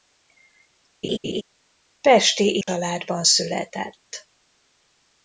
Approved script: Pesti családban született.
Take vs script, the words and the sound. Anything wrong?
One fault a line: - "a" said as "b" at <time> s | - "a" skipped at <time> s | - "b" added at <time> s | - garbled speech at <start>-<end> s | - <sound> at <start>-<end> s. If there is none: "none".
- laugh at 1.0-1.4 s
- dropout at 2.6-2.7 s